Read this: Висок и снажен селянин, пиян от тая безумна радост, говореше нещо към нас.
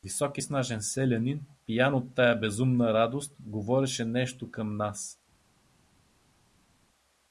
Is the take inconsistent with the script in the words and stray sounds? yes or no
no